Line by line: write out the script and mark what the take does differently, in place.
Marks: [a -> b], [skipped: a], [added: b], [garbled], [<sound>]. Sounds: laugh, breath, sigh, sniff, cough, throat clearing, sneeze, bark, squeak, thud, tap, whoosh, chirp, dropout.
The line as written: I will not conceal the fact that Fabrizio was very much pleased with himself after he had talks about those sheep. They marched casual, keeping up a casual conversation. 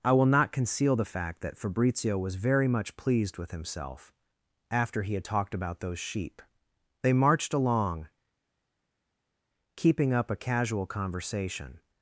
I will not conceal the fact that Fabrizio was very much pleased with himself after he had [talks -> talked] about those sheep. They marched [casual, -> along] keeping up a casual conversation.